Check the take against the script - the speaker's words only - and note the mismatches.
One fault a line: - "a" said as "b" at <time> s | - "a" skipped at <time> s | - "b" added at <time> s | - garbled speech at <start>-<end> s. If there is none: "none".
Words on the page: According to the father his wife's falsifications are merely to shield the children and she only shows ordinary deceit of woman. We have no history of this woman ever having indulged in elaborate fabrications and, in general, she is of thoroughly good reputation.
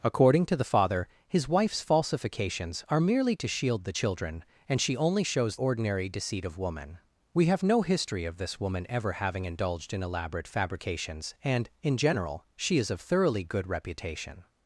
none